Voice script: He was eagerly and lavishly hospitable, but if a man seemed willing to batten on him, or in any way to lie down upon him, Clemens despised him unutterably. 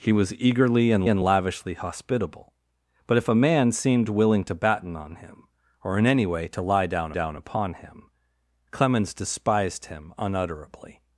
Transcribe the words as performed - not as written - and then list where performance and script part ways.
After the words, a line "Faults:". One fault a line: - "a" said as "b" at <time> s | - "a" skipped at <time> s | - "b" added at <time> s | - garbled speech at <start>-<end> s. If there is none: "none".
He was eagerly and and lavishly hospitable, but if a man seemed willing to batten on him, or in any way to lie down down upon him, Clemens despised him unutterably.
Faults:
- "and" added at 1.1 s
- "down" added at 7.1 s